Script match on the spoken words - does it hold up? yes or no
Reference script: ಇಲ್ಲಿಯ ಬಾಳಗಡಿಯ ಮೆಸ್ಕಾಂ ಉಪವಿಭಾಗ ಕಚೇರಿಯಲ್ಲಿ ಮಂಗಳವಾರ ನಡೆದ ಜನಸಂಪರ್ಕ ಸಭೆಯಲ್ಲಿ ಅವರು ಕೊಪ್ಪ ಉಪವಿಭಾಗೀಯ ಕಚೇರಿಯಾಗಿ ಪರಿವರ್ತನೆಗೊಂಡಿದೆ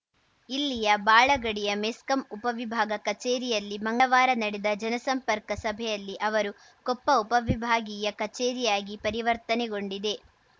yes